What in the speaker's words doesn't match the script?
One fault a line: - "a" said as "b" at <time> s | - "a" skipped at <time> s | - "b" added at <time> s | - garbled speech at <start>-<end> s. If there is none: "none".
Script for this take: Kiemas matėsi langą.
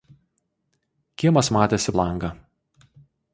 none